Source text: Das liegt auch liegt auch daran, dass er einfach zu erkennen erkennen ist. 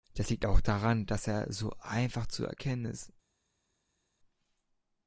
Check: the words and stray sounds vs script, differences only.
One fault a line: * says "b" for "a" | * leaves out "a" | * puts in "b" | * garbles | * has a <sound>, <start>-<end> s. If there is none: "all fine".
* leaves out "liegt auch"
* puts in "so"
* leaves out "erkennen"